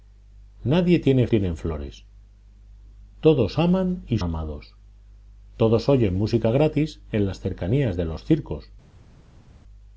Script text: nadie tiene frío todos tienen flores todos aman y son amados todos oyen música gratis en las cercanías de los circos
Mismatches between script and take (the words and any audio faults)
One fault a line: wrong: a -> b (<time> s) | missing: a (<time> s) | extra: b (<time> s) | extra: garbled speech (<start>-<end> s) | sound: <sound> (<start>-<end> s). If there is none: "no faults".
missing: frío todos (1.3 s)
missing: son (4.2 s)